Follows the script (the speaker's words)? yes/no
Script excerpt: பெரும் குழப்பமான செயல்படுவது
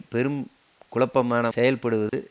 yes